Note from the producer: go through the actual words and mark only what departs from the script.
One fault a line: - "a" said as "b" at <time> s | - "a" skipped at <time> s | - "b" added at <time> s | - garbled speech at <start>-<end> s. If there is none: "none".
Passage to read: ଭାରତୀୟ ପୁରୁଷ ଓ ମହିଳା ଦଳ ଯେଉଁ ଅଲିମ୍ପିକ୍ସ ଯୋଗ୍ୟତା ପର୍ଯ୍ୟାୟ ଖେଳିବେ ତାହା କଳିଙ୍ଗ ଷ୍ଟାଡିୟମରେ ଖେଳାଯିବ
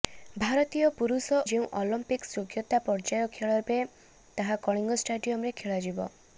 - "ଓ ମହିଳା ଦଳ" skipped at 1.4 s